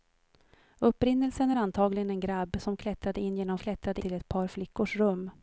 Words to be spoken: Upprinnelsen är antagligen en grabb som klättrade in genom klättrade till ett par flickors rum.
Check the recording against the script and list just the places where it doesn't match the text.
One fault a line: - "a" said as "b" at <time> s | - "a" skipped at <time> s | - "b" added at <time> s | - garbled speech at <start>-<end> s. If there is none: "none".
none